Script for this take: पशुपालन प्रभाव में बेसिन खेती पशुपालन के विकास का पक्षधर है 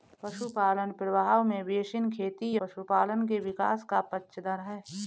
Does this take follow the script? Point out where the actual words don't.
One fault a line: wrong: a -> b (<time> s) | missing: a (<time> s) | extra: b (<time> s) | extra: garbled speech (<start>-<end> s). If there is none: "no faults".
no faults